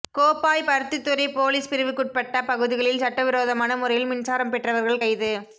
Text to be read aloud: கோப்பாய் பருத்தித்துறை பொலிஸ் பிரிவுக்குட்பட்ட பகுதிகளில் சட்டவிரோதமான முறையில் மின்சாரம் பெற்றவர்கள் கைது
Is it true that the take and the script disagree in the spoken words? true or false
false